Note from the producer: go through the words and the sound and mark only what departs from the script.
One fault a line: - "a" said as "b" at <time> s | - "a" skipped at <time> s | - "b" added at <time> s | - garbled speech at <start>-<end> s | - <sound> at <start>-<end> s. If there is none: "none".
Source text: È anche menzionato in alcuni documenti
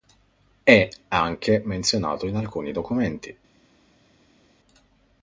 none